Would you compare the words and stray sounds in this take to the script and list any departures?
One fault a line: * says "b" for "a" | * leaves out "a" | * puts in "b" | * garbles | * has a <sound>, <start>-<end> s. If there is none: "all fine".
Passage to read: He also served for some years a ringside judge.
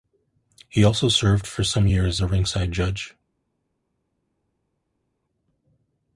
all fine